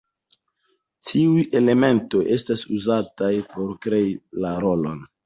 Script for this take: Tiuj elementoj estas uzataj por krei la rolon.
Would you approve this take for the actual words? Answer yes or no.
yes